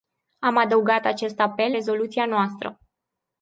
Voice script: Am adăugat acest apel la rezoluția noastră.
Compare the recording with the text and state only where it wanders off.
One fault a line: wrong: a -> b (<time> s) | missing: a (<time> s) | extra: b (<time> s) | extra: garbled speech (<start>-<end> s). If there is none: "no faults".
missing: la (1.7 s)